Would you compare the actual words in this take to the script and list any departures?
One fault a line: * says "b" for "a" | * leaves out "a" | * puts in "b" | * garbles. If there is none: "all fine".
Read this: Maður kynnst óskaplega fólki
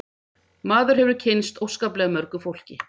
* puts in "hefur"
* puts in "mörgu"